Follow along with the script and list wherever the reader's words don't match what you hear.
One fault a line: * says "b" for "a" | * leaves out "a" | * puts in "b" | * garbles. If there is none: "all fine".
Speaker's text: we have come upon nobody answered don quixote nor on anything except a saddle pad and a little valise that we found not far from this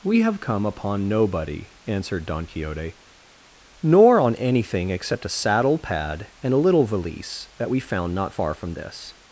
all fine